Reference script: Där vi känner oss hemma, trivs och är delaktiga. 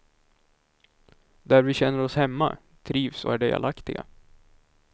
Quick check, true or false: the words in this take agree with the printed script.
true